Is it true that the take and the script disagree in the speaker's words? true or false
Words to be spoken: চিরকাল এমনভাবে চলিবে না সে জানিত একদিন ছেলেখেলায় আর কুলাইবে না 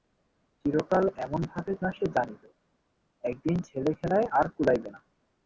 true